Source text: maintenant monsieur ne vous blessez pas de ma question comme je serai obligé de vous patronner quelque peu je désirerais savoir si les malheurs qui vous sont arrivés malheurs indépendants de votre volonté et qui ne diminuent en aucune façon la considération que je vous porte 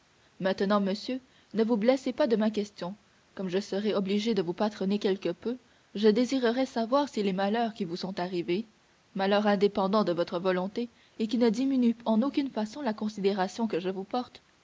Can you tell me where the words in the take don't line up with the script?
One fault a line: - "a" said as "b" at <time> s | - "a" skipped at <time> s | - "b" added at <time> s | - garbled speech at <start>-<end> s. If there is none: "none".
none